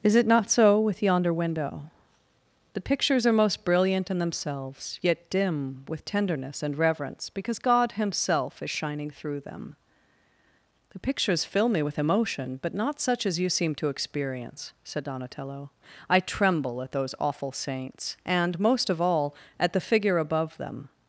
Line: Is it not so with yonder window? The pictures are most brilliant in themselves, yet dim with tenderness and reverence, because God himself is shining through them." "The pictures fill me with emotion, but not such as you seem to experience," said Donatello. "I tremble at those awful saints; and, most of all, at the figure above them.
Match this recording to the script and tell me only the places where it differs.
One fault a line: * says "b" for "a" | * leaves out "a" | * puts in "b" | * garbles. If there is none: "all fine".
all fine